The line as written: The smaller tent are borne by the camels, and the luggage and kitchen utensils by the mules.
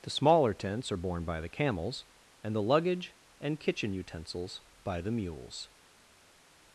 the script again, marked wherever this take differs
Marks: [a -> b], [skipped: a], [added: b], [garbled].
The smaller [tent -> tents] are borne by the camels, and the luggage and kitchen utensils by the mules.